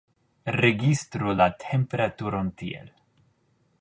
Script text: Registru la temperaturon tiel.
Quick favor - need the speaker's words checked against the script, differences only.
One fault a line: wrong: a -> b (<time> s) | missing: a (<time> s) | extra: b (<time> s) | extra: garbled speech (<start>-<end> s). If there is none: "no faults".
no faults